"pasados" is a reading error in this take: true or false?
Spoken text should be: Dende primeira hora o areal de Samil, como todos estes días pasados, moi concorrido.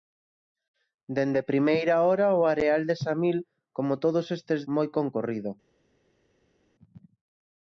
true